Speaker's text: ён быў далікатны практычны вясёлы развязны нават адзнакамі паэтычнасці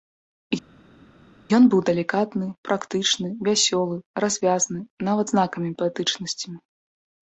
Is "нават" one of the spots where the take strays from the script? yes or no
no